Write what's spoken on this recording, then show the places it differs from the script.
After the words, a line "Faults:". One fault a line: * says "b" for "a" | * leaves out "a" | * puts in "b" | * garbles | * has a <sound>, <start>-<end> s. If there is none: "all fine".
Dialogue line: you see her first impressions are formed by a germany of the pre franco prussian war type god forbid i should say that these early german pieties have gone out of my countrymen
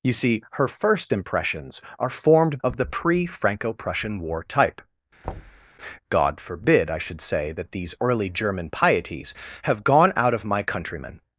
you see her first impressions are formed of the pre franco prussian war type god forbid i should say that these early german pieties have gone out of my countrymen
Faults:
* leaves out "by a germany"
* has a thud, 5.2-5.7 s